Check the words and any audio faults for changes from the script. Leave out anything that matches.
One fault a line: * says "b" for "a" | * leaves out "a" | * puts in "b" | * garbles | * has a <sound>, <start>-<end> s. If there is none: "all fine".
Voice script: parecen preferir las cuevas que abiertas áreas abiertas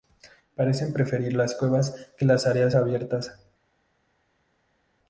* says "las" for "abiertas"